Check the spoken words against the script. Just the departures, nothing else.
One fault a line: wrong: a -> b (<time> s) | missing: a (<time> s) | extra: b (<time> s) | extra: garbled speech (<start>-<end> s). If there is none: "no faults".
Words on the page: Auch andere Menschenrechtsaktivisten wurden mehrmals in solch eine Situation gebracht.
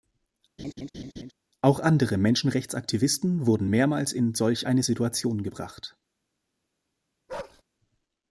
no faults